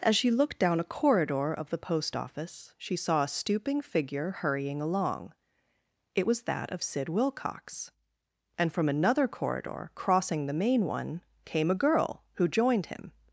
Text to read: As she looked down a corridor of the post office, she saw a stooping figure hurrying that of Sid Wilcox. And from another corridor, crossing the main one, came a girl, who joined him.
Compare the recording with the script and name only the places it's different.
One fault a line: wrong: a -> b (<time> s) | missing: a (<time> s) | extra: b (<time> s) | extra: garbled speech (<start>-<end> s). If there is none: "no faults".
extra: along It was (4.8 s)